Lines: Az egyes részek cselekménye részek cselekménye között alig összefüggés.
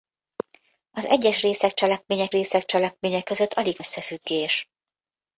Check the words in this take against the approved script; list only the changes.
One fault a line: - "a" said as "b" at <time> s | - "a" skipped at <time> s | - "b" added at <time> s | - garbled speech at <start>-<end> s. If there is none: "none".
none